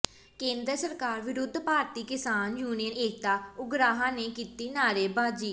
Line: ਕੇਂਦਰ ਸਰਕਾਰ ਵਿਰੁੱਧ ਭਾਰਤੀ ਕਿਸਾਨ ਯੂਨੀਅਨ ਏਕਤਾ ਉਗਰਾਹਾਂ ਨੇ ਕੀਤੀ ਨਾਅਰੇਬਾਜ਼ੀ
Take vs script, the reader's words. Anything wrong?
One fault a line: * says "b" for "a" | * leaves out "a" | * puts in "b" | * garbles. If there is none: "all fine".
all fine